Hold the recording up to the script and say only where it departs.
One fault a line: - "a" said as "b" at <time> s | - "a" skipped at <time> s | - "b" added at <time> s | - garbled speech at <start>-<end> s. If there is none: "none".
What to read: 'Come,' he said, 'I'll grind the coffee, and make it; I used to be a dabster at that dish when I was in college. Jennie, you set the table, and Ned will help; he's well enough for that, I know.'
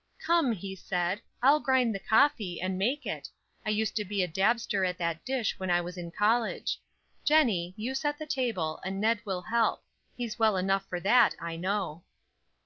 none